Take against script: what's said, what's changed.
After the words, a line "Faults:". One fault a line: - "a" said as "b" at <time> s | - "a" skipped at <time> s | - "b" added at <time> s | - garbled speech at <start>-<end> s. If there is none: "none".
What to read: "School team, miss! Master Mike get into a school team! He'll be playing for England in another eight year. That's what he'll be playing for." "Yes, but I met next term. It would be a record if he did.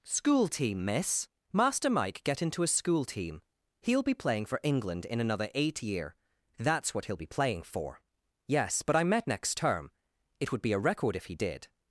"School team, miss! Master Mike get into a school team! He'll be playing for England in another eight year. That's what he'll be playing for." "Yes, but I met next term. It would be a record if he did.
Faults:
none